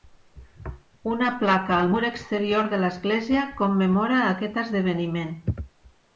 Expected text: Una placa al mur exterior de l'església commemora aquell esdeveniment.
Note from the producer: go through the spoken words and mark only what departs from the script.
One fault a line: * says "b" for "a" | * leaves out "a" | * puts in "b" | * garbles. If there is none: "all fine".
* says "aquest" for "aquell"